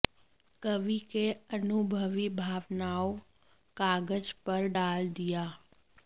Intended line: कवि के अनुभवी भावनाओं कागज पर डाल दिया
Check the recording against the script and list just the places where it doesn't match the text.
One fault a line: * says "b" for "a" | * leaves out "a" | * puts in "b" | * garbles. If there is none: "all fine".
all fine